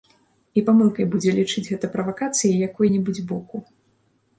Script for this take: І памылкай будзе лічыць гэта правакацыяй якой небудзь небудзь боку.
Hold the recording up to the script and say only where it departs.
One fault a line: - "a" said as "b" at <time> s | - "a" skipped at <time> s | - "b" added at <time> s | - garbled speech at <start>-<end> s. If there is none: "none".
- "небудзь" skipped at 3.3 s